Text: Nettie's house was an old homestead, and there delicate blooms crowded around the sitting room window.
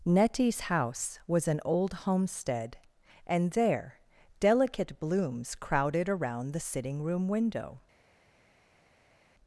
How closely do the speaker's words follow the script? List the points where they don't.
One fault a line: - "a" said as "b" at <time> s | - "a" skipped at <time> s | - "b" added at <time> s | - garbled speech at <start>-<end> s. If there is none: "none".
none